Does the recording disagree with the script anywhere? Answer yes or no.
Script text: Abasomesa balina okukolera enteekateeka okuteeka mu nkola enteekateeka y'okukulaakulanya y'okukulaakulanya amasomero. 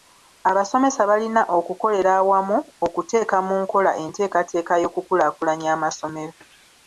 yes